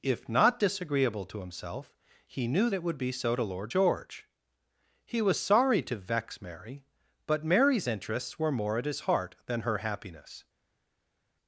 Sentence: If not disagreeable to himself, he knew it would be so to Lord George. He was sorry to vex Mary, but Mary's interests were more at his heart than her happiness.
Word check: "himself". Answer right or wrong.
right